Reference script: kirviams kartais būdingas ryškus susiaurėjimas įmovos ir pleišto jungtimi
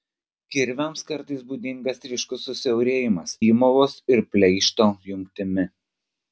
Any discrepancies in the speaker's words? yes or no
no